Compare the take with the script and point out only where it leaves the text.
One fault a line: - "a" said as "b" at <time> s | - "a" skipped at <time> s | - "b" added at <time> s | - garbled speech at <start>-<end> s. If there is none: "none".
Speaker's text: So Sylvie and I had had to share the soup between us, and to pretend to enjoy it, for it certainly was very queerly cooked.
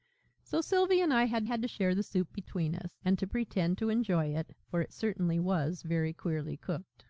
none